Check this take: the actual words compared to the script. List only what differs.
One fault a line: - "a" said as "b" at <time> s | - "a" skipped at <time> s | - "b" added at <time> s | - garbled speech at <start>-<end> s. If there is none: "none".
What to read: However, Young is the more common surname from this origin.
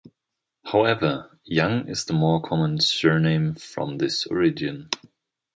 none